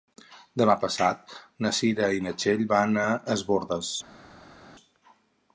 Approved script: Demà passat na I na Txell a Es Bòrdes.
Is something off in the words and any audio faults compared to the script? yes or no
yes